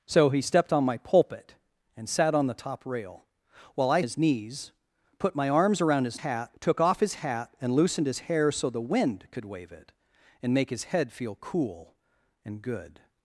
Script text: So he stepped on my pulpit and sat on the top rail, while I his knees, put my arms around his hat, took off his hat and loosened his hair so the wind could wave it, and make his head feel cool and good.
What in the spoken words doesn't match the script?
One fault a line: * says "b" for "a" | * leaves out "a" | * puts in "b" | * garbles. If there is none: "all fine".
all fine